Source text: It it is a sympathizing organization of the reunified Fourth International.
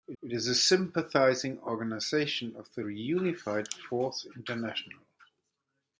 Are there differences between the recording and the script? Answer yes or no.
no